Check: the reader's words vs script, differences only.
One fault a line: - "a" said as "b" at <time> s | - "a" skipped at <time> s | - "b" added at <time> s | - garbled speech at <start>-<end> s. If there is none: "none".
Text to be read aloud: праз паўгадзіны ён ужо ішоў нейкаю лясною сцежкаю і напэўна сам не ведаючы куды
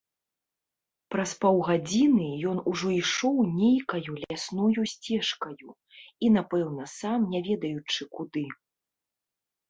none